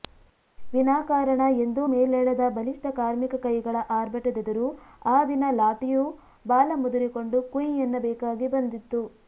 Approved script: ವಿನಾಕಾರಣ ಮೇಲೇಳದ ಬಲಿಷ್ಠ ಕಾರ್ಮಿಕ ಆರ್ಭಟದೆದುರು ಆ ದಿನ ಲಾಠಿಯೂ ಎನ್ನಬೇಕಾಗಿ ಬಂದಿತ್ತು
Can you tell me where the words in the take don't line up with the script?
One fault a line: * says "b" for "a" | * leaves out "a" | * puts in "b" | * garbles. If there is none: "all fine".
* puts in "ಎಂದೂ"
* puts in "ಕೈಗಳ"
* puts in "ಬಾಲ ಮುದುರಿಕೊಂಡು ಕುಂಯ್"